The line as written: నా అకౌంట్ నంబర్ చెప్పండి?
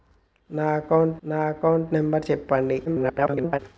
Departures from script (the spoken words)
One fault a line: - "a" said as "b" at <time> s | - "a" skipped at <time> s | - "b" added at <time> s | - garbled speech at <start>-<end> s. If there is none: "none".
- "నా అకౌంట్" added at 1.2 s
- garbled speech at 2.9-3.6 s